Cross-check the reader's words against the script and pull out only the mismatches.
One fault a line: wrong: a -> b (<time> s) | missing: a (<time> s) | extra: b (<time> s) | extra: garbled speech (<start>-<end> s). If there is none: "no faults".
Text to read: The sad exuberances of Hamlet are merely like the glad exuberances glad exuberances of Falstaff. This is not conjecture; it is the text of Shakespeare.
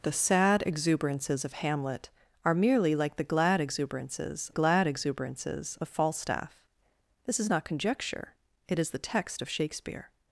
no faults